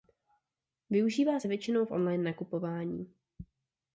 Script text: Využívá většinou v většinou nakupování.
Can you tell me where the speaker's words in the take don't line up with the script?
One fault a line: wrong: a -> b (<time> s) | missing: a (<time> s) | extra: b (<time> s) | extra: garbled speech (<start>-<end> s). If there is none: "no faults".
extra: se (1.4 s)
wrong: většinou -> online (1.9 s)